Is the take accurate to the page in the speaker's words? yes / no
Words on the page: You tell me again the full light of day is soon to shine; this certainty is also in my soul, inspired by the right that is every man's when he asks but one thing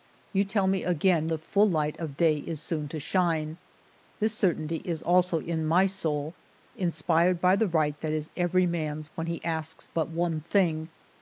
yes